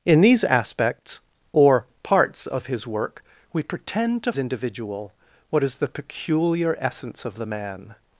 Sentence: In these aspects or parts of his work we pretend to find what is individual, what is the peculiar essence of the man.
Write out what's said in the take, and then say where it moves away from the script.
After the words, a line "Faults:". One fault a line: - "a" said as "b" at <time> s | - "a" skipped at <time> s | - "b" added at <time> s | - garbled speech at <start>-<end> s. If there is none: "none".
In these aspects or parts of his work we pretend to individual, what is the peculiar essence of the man.
Faults:
- "find what is" skipped at 4.3 s